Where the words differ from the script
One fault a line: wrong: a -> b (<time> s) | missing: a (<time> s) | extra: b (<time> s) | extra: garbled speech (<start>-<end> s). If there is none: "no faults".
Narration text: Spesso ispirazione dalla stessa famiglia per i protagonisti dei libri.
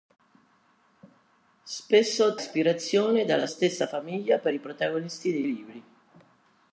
no faults